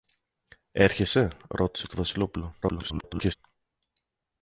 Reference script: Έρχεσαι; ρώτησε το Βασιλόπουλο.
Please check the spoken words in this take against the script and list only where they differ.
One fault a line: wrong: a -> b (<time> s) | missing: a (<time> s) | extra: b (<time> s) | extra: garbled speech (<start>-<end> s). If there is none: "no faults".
extra: garbled speech (2.6-3.4 s)